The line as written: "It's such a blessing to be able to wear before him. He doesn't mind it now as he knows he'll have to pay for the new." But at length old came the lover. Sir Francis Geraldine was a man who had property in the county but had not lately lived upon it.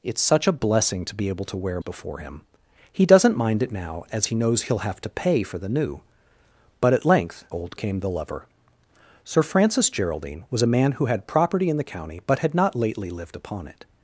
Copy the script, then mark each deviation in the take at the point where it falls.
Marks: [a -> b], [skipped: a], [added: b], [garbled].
"It's such a blessing to be able to wear before him. He doesn't mind it now as he knows he'll have to pay for the new." But at length old came the lover. Sir Francis Geraldine was a man who had property in the county but had not lately lived upon it.